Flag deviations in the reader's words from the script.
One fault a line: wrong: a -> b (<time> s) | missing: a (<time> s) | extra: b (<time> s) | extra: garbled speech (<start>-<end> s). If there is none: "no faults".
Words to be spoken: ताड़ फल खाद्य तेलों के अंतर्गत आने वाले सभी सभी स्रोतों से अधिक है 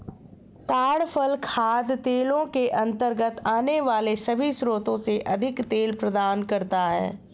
missing: सभी (4.5 s)
extra: तेल प्रदान करता (5.7 s)